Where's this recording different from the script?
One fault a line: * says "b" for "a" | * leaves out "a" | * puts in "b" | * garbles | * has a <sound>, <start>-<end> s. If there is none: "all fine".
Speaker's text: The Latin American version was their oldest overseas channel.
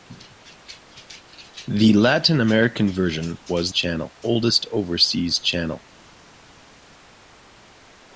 * says "channel" for "their"